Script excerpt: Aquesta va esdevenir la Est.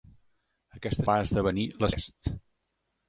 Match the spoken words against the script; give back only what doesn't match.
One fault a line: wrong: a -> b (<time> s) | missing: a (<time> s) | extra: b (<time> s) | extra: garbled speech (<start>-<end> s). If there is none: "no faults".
no faults